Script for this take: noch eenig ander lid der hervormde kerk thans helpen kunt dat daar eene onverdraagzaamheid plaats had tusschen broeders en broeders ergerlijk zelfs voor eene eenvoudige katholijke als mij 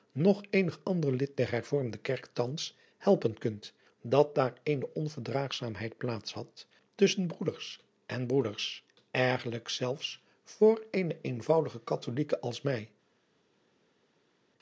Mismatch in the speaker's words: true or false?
false